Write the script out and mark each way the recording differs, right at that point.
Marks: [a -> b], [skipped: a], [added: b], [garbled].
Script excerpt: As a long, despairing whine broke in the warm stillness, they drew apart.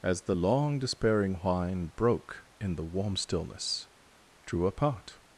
As [a -> the] long, despairing whine broke in the warm stillness, [skipped: they] drew apart.